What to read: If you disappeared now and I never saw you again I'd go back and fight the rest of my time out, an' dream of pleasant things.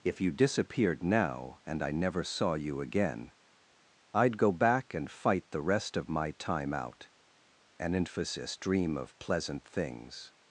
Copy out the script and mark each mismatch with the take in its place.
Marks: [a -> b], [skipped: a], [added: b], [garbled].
If you disappeared now and I never saw you again I'd go back and fight the rest of my time out, an' [added: emphasis] dream of pleasant things.